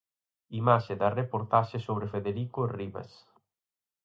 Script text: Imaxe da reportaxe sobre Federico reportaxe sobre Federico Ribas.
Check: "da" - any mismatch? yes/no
no